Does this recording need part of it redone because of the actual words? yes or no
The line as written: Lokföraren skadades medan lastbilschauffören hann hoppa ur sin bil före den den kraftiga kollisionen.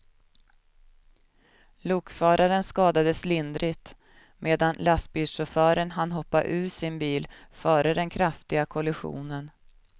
yes